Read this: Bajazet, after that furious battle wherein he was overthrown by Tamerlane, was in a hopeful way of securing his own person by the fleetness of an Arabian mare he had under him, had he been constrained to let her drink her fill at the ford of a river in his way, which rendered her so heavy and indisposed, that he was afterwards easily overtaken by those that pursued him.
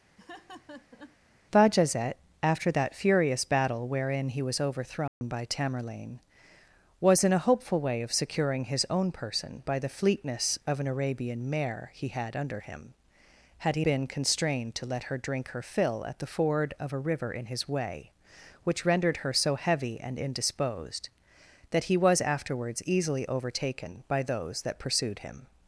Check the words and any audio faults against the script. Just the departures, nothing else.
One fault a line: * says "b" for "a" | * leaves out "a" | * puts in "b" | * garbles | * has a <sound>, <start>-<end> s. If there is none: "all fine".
* has a laugh, 0.2-1.2 s
* has a dropout, 5.1-5.2 s